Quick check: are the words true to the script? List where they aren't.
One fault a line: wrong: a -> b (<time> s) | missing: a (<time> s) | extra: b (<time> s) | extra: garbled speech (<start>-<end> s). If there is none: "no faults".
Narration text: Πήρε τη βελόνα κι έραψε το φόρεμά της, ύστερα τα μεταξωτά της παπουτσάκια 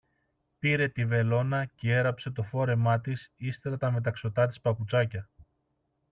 no faults